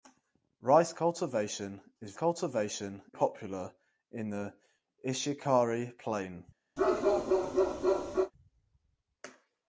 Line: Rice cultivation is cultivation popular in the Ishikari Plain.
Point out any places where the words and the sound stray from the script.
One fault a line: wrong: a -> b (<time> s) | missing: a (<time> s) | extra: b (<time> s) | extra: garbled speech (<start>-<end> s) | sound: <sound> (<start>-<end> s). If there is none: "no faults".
sound: bark (6.8-8.3 s)